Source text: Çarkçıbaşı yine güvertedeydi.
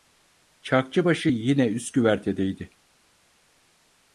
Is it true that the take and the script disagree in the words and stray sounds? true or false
true